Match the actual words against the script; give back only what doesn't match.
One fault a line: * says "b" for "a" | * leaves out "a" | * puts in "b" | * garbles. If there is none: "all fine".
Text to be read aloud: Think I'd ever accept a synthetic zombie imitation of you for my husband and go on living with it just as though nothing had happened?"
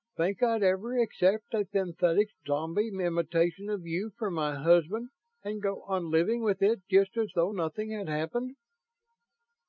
all fine